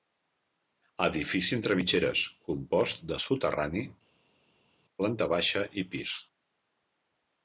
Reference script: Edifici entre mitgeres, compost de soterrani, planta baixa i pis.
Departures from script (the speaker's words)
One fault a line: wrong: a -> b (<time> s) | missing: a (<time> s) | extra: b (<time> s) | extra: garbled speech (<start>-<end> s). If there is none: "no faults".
no faults